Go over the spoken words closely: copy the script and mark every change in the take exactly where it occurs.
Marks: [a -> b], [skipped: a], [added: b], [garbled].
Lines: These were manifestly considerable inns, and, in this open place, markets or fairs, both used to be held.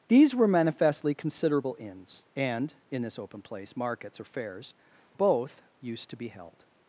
These were manifestly considerable inns, and, in this open place, markets or fairs, both used to be held.